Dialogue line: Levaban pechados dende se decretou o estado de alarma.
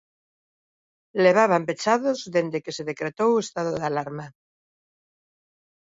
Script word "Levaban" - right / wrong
right